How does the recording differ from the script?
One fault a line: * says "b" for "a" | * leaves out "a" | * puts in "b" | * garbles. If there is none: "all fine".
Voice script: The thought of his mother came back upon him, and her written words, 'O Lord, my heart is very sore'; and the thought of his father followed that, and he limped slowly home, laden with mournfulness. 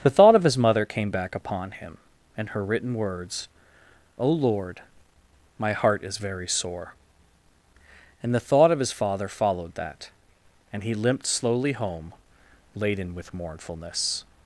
all fine